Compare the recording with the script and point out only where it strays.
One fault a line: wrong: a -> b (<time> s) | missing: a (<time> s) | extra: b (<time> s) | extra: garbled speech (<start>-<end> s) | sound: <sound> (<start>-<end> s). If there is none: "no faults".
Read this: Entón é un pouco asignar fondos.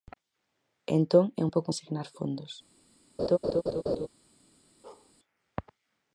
sound: laugh (3.2-4.1 s)
sound: bark (4.8-5.1 s)